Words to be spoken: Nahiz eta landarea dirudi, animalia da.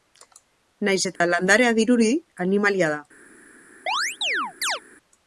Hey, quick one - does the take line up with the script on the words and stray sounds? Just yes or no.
no